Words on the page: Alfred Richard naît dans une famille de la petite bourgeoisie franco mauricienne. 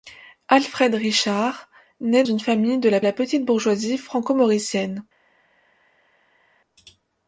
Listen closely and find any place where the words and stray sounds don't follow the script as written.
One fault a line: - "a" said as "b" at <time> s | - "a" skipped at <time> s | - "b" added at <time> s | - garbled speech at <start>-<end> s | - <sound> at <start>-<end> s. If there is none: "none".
- "dans" skipped at 2.2 s
- "la" added at 3.0 s